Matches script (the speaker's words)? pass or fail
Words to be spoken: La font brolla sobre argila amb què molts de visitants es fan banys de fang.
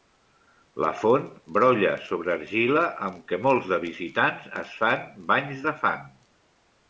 pass